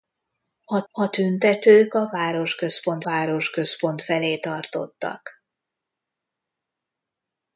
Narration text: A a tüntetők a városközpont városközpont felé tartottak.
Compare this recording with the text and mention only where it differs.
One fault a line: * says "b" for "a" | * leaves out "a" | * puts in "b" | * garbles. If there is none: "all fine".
all fine